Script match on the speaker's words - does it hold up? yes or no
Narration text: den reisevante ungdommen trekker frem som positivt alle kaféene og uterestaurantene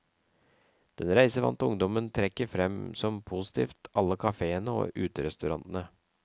yes